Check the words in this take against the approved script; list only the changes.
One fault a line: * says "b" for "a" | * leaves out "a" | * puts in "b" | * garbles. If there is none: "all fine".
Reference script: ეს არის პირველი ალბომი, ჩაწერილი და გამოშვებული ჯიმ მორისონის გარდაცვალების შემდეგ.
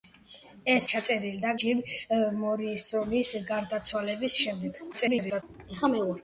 * leaves out "არის პირველი ალბომი"
* leaves out "გამოშვებული"
* garbles